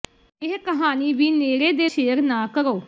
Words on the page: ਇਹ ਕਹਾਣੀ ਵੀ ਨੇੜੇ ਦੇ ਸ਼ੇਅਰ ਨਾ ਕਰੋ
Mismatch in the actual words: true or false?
false